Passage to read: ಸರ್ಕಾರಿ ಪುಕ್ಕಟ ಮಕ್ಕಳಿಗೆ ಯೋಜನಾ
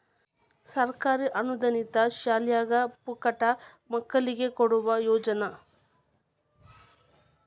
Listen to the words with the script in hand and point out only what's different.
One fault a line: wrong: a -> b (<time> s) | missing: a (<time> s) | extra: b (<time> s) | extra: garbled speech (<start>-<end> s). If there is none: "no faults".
extra: ಅನುದಾನಿತ ಶಾಲ್ಯಾಗ (1.4 s)
extra: ಕೊಡುವ (4.6 s)